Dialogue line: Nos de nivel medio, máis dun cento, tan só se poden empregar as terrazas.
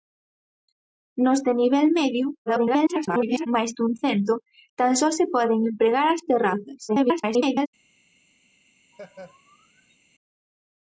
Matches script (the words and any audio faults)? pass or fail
fail